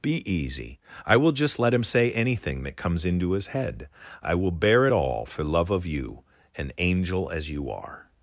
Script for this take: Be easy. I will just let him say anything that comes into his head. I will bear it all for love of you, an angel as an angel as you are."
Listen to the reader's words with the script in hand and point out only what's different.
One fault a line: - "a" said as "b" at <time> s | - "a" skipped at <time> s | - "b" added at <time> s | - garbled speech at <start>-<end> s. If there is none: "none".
- "an angel as" skipped at 7.5 s